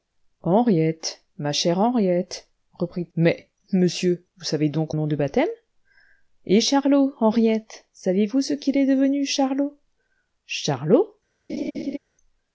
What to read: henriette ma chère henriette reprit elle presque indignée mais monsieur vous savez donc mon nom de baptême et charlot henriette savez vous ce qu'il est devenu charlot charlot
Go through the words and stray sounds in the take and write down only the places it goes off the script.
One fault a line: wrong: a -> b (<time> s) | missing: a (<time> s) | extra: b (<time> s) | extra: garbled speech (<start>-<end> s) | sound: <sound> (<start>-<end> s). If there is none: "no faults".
missing: elle presque indignée (3.1 s)
missing: mon (4.9 s)
sound: laugh (11.5-12.0 s)